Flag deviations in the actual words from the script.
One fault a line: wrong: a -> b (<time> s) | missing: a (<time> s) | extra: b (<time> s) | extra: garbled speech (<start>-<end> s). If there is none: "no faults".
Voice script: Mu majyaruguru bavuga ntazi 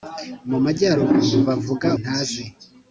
no faults